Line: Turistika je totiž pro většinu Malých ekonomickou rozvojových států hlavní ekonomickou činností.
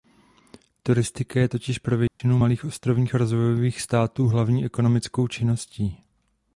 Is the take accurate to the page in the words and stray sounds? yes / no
no